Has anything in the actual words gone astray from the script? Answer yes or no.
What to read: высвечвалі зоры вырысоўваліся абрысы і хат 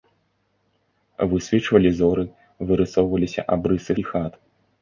no